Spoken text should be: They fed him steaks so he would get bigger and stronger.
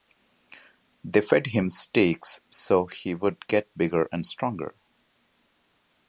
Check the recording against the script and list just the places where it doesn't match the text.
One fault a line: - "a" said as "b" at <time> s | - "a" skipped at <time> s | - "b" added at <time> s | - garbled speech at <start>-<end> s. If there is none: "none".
none